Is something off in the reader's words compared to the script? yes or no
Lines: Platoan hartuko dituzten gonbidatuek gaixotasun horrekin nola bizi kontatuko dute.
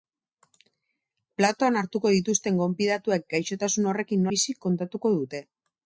yes